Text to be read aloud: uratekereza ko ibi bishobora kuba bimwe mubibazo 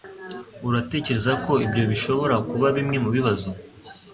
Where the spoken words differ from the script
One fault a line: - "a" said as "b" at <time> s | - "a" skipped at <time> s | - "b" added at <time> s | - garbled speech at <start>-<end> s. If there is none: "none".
- "ibi" said as "ibyo" at 1.6 s